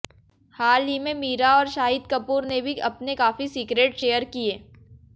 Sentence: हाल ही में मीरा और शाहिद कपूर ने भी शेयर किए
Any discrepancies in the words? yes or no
yes